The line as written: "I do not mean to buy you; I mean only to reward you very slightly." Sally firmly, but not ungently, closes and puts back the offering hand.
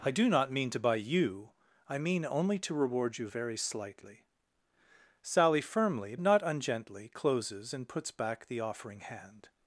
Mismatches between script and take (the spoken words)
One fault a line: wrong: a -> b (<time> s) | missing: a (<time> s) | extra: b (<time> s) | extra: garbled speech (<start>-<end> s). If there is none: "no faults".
missing: but (6.2 s)